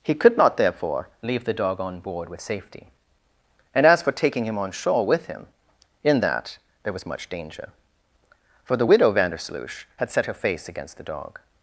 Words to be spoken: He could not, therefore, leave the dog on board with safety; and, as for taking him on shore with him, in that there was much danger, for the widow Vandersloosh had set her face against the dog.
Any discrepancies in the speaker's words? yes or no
no